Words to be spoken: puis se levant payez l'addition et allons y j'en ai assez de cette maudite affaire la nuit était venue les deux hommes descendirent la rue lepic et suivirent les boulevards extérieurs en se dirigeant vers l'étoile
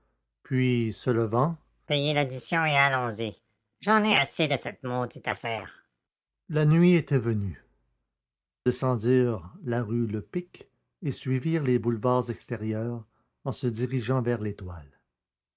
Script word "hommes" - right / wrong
wrong